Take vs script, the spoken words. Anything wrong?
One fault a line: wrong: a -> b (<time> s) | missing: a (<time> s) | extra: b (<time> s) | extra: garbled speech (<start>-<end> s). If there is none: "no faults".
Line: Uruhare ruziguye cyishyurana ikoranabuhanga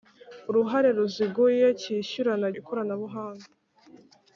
no faults